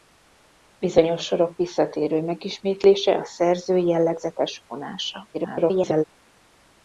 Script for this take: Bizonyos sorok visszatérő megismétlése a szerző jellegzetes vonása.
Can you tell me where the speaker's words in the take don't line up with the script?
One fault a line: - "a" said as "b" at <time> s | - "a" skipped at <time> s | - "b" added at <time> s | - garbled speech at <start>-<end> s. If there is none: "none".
- garbled speech at 5.3-6.0 s